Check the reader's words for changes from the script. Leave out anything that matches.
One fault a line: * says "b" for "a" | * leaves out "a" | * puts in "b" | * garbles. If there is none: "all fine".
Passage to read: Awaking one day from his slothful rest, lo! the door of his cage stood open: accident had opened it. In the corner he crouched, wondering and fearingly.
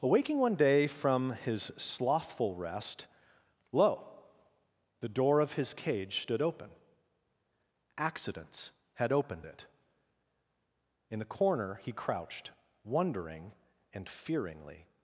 * says "accidents" for "accident"